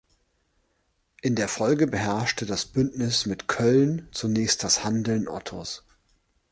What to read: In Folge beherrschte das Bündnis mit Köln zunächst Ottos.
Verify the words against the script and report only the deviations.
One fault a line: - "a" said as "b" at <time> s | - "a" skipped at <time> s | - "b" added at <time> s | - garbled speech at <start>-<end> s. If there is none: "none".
- "der" added at 1.4 s
- "das Handeln" added at 4.6 s